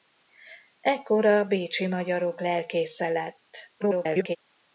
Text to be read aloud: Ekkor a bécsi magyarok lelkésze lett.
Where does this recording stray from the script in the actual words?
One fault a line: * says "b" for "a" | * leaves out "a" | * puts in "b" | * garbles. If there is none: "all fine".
* garbles